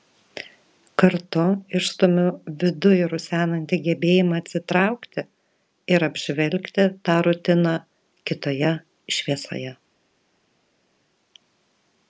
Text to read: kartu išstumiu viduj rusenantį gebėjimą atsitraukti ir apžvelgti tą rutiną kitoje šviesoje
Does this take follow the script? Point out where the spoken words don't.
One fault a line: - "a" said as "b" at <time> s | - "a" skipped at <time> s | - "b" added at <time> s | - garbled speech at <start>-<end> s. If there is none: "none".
none